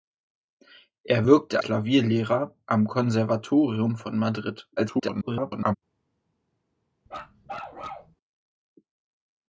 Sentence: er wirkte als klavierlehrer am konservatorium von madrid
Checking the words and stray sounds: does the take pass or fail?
fail